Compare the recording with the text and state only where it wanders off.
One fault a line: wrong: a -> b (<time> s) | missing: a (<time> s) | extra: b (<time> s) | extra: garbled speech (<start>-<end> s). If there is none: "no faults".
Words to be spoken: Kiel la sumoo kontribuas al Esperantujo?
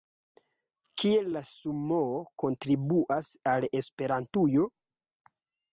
no faults